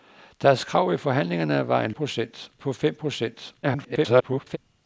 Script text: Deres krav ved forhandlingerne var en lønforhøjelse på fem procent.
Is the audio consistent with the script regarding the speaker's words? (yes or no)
no